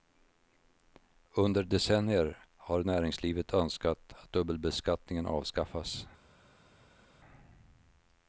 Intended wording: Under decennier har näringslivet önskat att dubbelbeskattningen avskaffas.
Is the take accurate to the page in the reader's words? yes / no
yes